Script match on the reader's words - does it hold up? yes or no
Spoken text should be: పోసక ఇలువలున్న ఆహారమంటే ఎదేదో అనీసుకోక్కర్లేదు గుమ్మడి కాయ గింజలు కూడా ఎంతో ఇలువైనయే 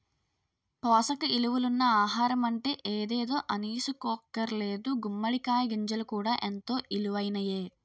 yes